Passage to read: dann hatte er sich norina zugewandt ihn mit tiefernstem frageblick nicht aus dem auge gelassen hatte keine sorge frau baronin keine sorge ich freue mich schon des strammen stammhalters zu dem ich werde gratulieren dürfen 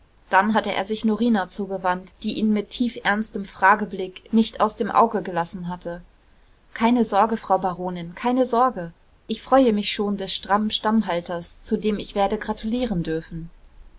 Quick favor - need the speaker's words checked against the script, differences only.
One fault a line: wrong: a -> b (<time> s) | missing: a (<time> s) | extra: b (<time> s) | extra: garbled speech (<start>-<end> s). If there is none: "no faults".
extra: die (2.2 s)